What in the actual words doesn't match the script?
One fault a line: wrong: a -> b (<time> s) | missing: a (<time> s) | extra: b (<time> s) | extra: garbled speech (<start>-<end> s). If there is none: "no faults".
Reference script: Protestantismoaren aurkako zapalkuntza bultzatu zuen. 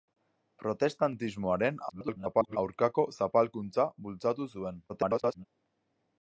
extra: garbled speech (1.9-2.6 s)
extra: garbled speech (4.9-5.5 s)